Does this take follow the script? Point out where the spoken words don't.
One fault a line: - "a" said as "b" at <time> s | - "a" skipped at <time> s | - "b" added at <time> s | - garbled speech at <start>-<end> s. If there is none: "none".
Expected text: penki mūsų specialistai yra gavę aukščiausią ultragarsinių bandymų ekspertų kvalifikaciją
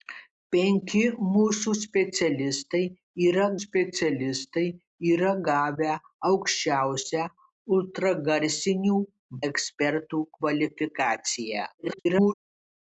- "specialistai yra" added at 3.6 s
- "bandymų" skipped at 9.0 s
- garbled speech at 11.8-12.3 s